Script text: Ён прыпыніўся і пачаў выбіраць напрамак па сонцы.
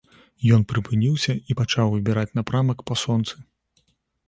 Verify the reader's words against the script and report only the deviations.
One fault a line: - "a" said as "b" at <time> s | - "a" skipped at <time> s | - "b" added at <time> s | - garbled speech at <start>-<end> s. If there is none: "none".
none